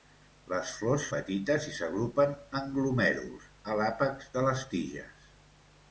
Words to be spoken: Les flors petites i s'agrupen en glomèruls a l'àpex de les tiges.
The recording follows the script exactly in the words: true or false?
true